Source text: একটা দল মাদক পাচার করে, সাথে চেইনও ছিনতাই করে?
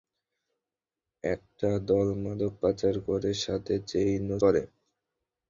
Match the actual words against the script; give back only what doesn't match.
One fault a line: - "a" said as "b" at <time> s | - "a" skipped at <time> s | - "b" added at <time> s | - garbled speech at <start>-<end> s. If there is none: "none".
- "ছিনতাই" skipped at 4.4 s